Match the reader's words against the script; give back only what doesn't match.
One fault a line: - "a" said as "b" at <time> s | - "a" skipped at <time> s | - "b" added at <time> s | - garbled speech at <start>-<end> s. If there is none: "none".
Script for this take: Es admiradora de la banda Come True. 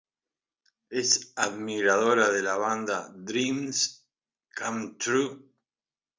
- "Dreams" added at 3.1 s